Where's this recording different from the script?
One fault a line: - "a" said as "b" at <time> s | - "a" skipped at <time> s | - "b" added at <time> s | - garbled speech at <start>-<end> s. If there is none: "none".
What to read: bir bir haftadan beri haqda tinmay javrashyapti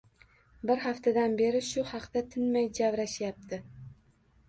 - "bir" skipped at 0.8 s
- "shu" added at 1.7 s